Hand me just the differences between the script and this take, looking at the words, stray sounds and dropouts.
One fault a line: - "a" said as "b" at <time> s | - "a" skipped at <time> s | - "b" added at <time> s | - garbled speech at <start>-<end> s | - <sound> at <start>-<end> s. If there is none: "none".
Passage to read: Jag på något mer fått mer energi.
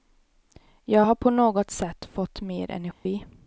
- "har" added at 1.0 s
- "mer" said as "sätt" at 1.7 s
- dropout at 2.9-3.1 s